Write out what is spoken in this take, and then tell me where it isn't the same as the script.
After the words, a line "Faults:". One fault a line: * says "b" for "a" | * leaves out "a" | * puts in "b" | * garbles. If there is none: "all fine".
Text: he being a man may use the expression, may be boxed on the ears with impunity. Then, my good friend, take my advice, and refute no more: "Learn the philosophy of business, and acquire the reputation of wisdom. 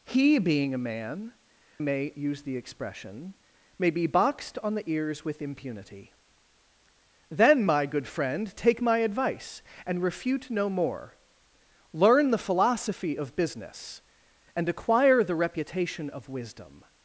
he being a man may use the expression, may be boxed on the ears with impunity. Then, my good friend, take my advice, and refute no more: "Learn the philosophy of business, and acquire the reputation of wisdom.
Faults:
all fine